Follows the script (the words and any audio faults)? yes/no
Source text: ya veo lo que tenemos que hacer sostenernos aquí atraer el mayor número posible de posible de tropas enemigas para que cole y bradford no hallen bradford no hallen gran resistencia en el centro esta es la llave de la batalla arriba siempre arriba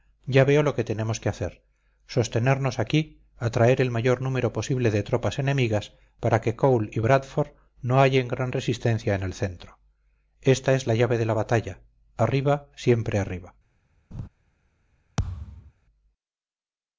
no